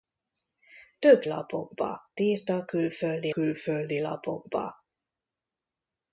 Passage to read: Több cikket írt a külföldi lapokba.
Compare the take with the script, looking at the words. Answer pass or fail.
fail